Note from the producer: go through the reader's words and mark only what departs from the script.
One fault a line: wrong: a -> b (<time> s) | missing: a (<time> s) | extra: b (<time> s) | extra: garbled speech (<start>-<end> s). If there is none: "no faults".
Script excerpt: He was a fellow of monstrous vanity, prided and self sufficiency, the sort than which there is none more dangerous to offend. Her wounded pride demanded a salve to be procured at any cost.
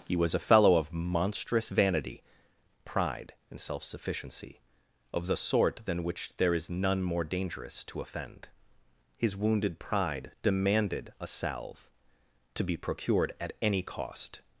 wrong: prided -> pride (2.9 s)
extra: of (5.1 s)
wrong: Her -> His (9.2 s)